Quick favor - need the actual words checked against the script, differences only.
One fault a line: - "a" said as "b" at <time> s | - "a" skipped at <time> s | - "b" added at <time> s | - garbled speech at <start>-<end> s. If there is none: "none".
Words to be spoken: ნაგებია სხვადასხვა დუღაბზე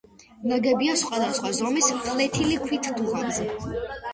- "ზომის ფლეთილი ქვით" added at 1.6 s